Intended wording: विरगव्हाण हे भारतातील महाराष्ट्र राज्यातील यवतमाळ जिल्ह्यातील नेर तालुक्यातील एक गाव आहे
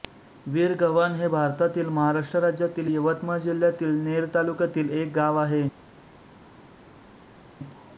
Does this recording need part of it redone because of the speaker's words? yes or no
no